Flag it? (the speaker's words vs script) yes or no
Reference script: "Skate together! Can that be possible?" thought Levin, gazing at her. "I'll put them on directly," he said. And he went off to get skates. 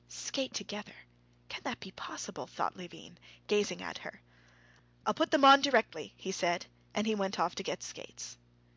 no